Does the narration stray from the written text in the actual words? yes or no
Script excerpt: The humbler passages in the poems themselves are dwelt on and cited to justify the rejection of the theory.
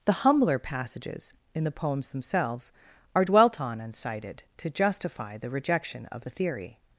no